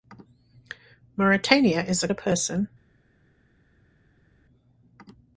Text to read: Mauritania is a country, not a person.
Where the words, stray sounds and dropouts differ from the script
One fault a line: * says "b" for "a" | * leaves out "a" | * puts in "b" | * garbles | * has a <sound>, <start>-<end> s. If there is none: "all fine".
* leaves out "country not"